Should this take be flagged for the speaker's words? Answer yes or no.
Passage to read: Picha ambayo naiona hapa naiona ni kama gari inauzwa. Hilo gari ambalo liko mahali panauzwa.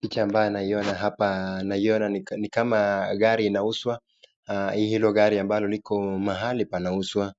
no